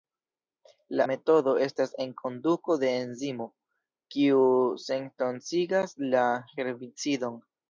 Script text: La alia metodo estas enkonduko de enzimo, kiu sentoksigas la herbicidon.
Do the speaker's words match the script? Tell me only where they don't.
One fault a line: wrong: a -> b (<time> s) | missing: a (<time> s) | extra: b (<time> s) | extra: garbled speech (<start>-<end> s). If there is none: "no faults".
missing: alia (1.1 s)